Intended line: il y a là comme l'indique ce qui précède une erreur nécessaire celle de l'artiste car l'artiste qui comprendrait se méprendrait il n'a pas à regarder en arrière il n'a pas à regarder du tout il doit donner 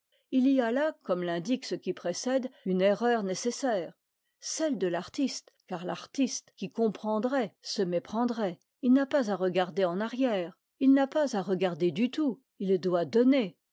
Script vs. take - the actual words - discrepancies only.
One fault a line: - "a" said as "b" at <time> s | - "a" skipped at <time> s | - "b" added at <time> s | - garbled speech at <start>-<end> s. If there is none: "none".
none